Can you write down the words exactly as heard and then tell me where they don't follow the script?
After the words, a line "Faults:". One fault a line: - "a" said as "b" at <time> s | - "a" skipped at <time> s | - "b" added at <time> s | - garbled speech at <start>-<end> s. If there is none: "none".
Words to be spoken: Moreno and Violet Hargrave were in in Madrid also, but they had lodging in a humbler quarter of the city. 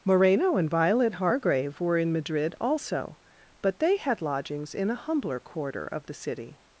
Moreno and Violet Hargrave were in Madrid also, but they had lodgings in a humbler quarter of the city.
Faults:
- "in" skipped at 2.1 s
- "lodging" said as "lodgings" at 4.2 s